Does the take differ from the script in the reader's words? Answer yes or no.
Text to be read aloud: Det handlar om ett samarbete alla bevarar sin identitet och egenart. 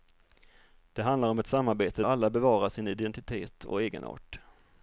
no